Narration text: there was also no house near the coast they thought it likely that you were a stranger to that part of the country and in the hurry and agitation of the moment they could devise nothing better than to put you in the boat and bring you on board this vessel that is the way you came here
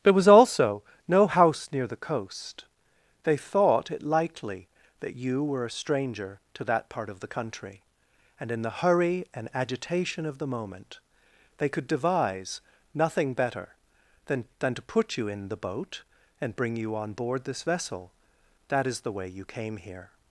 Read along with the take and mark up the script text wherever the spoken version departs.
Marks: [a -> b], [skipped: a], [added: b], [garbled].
there was also no house near the coast they thought it likely that you were a stranger to that part of the country and in the hurry and agitation of the moment they could devise nothing better than [added: than] to put you in the boat and bring you on board this vessel that is the way you came here